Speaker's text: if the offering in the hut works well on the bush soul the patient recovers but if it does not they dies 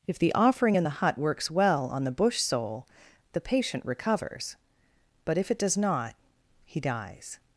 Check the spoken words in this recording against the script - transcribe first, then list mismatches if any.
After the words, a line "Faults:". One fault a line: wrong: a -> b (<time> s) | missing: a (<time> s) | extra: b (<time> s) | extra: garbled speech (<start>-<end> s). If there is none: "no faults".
if the offering in the hut works well on the bush soul the patient recovers but if it does not he dies
Faults:
wrong: they -> he (6.6 s)